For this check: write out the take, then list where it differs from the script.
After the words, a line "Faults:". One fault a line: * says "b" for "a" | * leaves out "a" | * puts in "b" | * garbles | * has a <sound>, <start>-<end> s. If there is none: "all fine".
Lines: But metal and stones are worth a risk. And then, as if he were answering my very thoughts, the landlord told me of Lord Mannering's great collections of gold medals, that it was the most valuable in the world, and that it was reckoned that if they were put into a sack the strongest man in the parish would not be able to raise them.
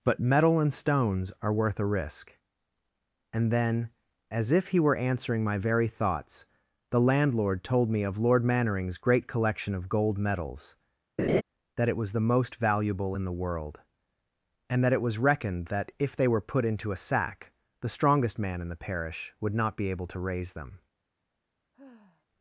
But metal and stones are worth a risk. And then, as if he were answering my very thoughts, the landlord told me of Lord Mannering's great collection of gold medals, that it was the most valuable in the world, and that it was reckoned that if they were put into a sack the strongest man in the parish would not be able to raise them.
Faults:
* says "collection" for "collections"
* has a laugh, 11.2-11.4 s
* has a sigh, 21.7-22.3 s